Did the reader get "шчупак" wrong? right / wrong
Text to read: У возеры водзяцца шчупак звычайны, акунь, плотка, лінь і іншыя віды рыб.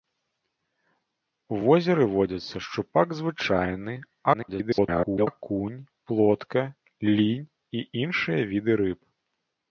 right